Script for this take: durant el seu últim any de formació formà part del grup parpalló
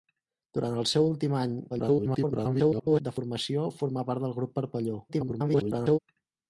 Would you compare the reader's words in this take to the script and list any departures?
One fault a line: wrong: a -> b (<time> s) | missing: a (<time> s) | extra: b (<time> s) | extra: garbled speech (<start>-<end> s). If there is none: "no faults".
extra: garbled speech (1.7-3.0 s)
extra: garbled speech (5.1-6.0 s)